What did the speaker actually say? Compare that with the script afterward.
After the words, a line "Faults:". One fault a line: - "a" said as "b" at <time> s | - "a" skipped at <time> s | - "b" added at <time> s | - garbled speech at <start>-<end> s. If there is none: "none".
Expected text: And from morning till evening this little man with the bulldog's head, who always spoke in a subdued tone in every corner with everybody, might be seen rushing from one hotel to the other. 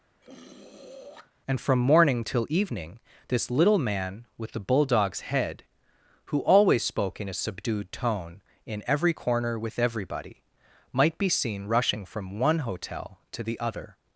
And from morning till evening this little man with the bulldog's head, who always spoke in a subdued tone in every corner with everybody, might be seen rushing from one hotel to the other.
Faults:
none